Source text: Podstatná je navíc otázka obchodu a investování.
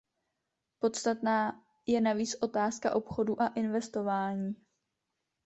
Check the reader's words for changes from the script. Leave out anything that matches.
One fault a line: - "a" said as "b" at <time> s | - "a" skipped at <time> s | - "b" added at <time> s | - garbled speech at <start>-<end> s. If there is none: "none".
none